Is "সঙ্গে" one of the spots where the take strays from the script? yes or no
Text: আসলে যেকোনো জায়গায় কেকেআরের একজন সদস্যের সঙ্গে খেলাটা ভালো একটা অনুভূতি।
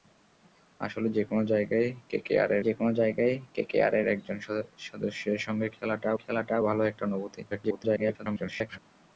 no